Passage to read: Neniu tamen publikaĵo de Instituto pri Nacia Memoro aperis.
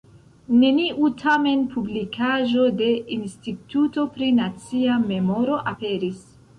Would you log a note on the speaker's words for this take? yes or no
no